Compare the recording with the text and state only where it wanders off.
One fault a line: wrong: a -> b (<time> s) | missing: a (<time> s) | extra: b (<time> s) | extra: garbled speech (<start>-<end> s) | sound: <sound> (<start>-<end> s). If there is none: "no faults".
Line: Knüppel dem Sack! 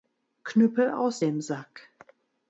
extra: aus (0.9 s)